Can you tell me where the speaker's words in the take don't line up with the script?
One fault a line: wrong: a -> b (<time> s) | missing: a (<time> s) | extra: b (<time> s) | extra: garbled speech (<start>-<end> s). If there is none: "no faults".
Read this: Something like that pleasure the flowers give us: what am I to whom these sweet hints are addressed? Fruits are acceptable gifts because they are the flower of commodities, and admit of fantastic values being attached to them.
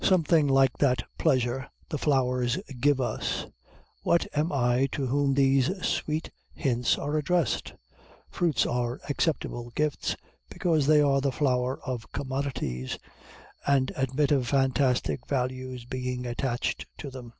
no faults